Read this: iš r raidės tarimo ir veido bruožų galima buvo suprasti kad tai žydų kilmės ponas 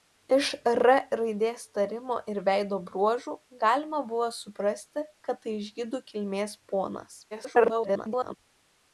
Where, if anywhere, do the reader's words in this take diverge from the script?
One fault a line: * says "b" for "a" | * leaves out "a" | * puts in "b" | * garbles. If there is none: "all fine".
* garbles